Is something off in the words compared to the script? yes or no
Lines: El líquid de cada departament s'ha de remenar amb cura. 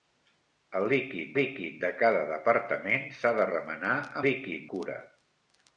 yes